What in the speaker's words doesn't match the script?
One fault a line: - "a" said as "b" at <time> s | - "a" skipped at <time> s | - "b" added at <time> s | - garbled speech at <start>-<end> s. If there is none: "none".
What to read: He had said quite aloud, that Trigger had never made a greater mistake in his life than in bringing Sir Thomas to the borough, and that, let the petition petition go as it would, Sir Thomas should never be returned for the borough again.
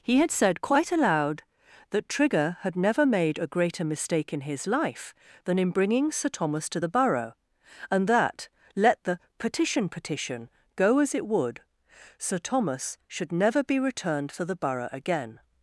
none